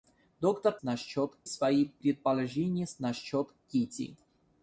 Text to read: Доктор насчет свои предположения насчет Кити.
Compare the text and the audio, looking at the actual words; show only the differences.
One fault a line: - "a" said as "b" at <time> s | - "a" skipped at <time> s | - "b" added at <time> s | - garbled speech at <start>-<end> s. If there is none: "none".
none